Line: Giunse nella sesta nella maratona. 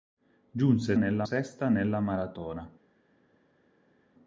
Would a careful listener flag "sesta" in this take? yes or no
no